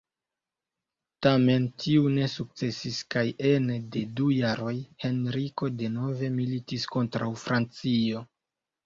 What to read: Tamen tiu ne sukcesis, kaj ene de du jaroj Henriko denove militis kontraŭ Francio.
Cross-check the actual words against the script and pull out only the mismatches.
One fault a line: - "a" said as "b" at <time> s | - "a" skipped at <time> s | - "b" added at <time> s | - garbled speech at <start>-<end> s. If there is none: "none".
none